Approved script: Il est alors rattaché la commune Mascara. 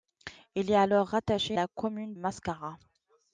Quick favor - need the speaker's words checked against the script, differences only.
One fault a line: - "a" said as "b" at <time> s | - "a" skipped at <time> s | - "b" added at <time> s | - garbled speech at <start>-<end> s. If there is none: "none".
none